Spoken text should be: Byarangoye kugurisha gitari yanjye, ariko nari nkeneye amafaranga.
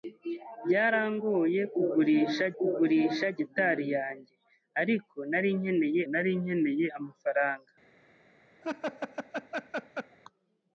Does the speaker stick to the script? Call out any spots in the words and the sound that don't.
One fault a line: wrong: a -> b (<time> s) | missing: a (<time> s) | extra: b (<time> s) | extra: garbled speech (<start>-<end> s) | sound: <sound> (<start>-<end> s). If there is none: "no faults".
extra: kugurisha (2.6 s)
extra: nari nkeneye (6.1 s)
sound: laugh (8.6-10.2 s)